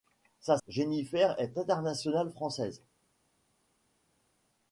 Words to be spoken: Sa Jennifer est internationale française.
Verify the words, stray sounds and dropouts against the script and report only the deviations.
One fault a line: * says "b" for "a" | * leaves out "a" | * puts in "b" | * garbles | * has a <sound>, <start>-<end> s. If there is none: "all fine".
all fine